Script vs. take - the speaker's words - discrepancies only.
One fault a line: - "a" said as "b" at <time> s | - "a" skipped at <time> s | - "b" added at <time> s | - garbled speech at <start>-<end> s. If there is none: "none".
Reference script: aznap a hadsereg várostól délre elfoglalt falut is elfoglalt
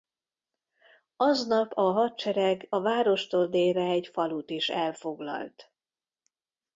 - "a" added at 2.7 s
- "elfoglalt" said as "egy" at 3.8 s